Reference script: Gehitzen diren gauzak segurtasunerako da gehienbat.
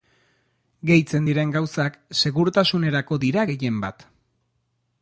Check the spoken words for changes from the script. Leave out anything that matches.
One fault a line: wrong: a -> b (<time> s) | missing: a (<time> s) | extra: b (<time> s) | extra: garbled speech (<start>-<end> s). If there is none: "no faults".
wrong: da -> dira (3.3 s)